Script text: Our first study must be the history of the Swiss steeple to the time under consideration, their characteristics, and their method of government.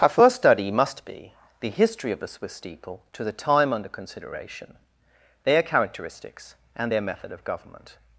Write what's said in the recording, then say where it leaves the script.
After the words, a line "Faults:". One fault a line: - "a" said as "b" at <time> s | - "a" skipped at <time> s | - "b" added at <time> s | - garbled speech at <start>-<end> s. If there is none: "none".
Our first study must be the history of the Swiss steeple to the time under consideration, their characteristics, and their method of government.
Faults:
none